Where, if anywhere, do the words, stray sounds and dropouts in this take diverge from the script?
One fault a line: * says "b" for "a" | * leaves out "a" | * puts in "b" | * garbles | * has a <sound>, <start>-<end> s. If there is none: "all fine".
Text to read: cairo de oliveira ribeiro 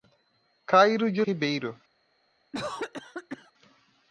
* leaves out "oliveira"
* has a cough, 2.5-3.5 s